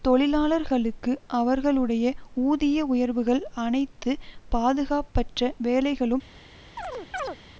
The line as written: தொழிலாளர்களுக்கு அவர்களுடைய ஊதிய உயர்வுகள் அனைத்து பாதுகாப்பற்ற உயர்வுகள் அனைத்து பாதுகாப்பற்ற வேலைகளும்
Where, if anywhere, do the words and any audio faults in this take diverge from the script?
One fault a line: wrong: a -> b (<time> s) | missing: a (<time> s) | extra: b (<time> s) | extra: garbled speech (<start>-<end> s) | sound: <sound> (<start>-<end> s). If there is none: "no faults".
missing: உயர்வுகள் அனைத்து பாதுகாப்பற்ற (5.5 s)
sound: chirp (6.8-7.4 s)